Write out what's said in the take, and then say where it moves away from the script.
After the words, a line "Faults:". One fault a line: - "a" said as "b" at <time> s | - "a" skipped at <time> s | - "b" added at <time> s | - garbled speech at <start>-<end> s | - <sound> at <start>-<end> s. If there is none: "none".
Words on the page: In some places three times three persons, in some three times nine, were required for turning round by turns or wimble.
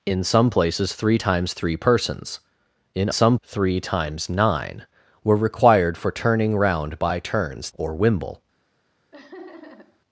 In some places three times three persons, in some three times nine, were required for turning round by turns or wimble.
Faults:
- laugh at 9.1-10.0 s